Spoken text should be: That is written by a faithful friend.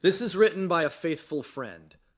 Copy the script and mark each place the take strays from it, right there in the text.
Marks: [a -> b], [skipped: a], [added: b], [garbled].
[That -> This] is written by a faithful friend.